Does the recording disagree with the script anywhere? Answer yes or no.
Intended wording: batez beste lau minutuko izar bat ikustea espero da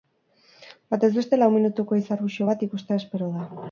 yes